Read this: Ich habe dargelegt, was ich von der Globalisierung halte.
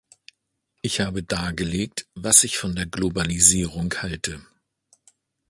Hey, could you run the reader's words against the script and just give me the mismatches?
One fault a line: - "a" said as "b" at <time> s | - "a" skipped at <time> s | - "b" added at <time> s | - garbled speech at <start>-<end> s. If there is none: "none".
none